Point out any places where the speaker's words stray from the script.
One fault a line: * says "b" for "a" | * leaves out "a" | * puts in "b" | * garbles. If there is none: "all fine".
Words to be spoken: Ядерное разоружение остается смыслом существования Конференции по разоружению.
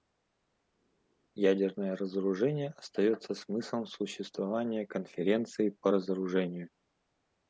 all fine